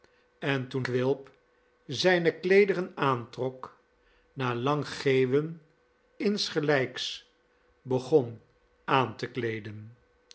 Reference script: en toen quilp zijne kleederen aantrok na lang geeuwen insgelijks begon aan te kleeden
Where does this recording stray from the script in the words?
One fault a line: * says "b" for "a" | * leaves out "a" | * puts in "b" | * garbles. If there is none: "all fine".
all fine